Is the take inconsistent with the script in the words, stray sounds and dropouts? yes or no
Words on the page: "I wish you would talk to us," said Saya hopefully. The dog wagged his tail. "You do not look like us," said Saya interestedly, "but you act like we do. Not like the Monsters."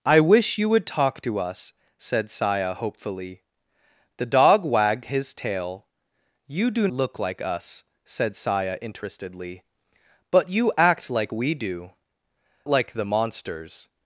yes